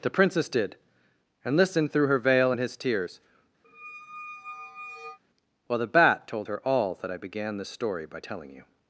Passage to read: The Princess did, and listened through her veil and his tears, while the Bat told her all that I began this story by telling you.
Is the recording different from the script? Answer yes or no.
no